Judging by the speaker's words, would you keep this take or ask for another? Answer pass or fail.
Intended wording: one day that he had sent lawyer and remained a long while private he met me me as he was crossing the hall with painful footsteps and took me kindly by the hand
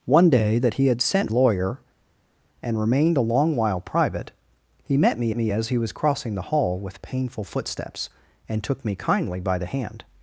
pass